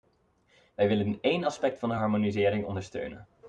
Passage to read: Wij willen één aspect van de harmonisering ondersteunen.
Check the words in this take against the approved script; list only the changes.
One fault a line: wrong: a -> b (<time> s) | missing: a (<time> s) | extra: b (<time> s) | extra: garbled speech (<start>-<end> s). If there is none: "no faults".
no faults